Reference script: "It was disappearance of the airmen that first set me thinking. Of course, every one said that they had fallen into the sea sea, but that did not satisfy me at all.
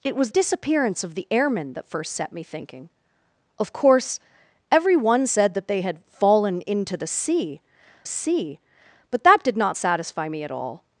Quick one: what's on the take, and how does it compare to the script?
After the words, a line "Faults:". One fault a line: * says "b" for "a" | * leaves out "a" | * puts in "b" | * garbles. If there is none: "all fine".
"It was disappearance of the airmen that first set me thinking. Of course, every one said that they had fallen into the sea sea, but that did not satisfy me at all.
Faults:
all fine